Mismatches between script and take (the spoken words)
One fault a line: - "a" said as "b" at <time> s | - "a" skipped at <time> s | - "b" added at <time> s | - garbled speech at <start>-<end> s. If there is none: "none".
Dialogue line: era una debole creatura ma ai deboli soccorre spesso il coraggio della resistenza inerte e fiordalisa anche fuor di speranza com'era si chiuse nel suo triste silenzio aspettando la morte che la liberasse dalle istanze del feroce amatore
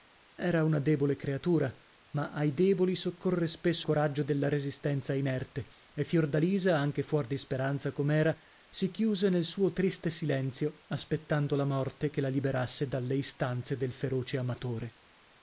- "il" skipped at 3.9 s